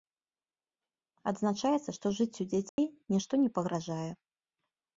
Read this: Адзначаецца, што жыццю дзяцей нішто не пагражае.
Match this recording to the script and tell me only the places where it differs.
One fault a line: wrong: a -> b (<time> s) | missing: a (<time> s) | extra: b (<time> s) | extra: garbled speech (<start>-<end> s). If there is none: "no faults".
no faults